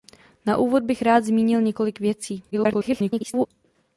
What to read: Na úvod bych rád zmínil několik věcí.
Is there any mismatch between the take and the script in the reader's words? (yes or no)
yes